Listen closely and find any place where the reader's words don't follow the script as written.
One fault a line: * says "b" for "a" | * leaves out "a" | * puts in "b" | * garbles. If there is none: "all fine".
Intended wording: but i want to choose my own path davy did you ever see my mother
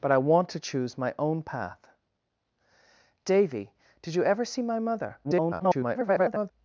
* garbles